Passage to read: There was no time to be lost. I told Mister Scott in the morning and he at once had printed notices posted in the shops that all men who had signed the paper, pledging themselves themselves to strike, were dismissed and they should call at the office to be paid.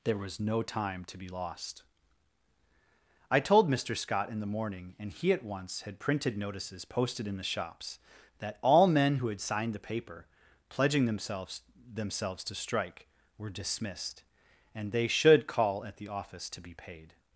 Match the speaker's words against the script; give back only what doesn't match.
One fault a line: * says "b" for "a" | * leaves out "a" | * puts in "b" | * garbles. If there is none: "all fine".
all fine